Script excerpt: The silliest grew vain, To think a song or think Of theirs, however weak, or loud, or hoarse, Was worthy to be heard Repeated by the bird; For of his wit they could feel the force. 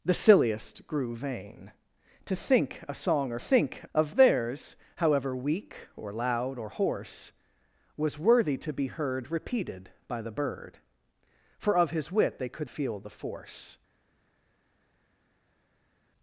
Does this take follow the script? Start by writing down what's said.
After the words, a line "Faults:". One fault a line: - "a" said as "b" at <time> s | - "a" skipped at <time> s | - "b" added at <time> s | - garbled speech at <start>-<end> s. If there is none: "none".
The silliest grew vain, To think a song or think Of theirs, however weak, or loud, or hoarse, Was worthy to be heard Repeated by the bird; For of his wit they could feel the force.
Faults:
none